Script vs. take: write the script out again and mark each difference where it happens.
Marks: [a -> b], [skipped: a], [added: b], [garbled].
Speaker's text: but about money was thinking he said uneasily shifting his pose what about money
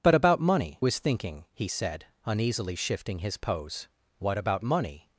but about money was thinking he said uneasily shifting his pose what about money